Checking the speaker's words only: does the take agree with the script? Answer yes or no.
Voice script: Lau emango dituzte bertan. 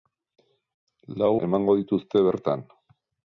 yes